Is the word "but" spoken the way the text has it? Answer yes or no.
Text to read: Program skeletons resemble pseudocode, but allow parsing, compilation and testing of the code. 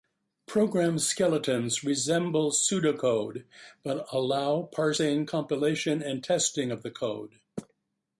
yes